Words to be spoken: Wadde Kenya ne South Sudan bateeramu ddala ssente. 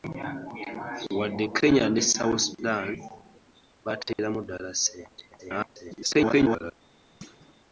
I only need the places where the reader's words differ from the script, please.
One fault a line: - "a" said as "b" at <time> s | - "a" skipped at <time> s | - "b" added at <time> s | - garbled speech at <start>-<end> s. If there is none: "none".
- garbled speech at 5.3-6.7 s